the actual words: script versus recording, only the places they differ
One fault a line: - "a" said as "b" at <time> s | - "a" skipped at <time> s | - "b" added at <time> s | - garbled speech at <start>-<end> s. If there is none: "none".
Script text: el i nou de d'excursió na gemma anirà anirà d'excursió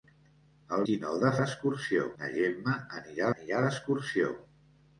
none